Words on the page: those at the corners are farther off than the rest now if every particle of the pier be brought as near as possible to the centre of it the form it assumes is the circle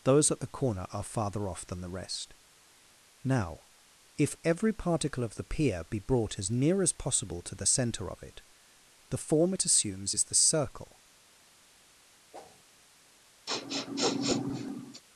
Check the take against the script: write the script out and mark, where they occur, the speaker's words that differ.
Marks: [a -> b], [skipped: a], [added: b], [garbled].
those at the [corners -> corner] are farther off than the rest now if every particle of the pier be brought as near as possible to the centre of it the form it assumes is the circle